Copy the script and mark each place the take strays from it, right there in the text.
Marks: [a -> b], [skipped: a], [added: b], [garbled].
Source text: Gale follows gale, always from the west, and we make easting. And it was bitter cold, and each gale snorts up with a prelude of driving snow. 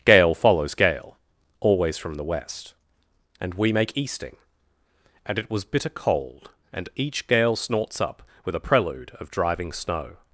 Gale follows gale, always from the west, and we make easting. And it was bitter cold, and each gale snorts up with a prelude of driving snow.